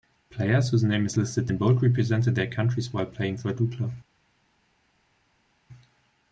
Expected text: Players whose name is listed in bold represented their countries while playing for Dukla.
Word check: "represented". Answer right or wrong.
right